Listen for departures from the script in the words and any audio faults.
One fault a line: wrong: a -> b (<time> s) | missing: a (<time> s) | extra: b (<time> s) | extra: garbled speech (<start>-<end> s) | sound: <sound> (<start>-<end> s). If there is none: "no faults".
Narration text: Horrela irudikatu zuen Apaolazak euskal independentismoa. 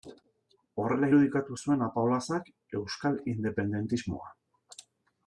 no faults